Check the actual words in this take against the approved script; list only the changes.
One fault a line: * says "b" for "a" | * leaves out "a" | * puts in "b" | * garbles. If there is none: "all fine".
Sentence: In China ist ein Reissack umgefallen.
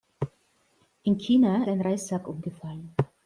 * leaves out "ist"